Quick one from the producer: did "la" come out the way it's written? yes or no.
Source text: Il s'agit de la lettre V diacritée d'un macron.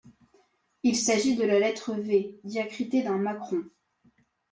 yes